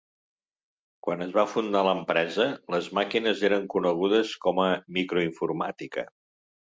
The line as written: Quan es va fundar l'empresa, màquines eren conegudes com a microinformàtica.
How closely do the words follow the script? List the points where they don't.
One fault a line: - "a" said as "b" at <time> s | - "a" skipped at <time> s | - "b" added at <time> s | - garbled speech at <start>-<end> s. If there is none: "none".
- "les" added at 2.8 s